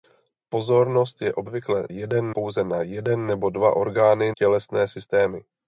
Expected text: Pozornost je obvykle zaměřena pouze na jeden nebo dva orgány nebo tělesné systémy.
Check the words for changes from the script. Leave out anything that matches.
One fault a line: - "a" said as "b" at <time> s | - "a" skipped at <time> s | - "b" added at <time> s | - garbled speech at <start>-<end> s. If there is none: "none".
- "zaměřena" said as "jeden" at 1.9 s
- "nebo" skipped at 4.3 s